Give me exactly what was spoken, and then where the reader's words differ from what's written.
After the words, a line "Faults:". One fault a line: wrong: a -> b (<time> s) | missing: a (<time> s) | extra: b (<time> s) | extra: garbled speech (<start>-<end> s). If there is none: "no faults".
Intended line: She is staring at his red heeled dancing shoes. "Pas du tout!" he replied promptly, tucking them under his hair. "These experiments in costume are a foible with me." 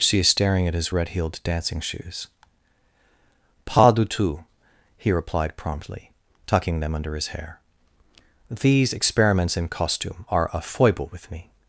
She is staring at his red heeled dancing shoes. "Pas du tout!" he replied promptly, tucking them under his hair. "These experiments in costume are a foible with me."
Faults:
no faults